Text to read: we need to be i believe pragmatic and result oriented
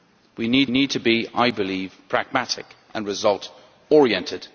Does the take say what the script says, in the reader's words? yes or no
no